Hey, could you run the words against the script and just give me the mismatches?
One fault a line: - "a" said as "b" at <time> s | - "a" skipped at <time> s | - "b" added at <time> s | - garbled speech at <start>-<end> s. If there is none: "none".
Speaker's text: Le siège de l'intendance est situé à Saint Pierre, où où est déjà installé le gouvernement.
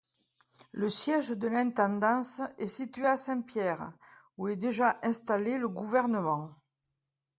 - "où" skipped at 4.5 s